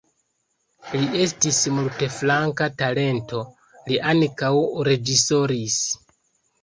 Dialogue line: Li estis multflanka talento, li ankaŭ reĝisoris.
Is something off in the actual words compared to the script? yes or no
no